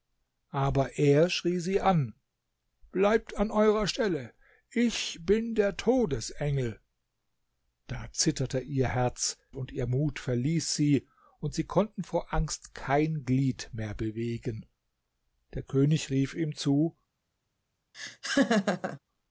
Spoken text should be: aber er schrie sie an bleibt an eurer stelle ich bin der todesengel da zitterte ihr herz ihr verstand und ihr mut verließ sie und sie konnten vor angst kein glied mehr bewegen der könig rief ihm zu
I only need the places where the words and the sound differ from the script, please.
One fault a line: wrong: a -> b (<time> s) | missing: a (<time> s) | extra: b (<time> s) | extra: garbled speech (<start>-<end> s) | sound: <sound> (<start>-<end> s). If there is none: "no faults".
missing: ihr verstand (9.4 s)
sound: laugh (17.9-19.0 s)